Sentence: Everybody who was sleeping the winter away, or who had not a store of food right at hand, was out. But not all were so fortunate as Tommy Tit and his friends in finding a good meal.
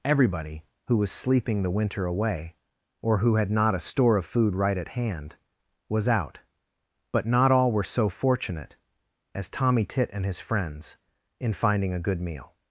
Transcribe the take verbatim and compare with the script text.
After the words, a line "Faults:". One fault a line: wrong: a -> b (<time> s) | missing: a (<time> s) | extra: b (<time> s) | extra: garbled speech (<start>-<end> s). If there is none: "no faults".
Everybody who was sleeping the winter away, or who had not a store of food right at hand, was out. But not all were so fortunate as Tommy Tit and his friends in finding a good meal.
Faults:
no faults